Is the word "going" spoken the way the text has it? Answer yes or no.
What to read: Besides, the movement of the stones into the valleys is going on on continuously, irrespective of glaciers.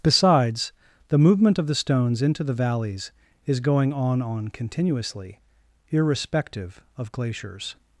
yes